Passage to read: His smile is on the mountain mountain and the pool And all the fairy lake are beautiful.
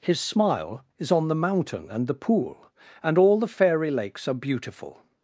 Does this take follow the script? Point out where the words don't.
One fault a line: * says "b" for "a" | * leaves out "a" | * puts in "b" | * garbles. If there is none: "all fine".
* leaves out "mountain"
* says "lakes" for "lake"